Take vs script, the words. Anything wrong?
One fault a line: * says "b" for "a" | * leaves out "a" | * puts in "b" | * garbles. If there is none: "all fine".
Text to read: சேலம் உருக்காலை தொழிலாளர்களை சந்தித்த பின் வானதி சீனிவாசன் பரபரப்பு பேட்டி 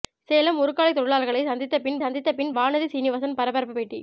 * puts in "சந்தித்த பின்"